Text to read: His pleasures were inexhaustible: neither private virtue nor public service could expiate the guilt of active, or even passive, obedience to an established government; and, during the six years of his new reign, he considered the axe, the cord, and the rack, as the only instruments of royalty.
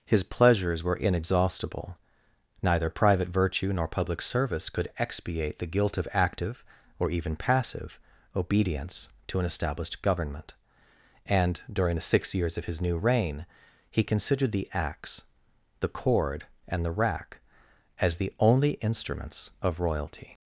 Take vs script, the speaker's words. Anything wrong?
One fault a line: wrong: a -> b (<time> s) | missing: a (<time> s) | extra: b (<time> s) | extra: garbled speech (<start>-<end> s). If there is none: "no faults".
no faults